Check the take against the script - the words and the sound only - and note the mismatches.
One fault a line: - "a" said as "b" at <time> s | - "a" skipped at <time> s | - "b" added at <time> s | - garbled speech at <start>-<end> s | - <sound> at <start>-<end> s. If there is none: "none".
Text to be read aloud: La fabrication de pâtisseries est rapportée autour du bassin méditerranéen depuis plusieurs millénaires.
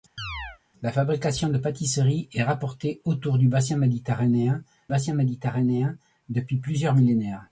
- chirp at 0.2-0.6 s
- "bassin méditerranéen" added at 4.9 s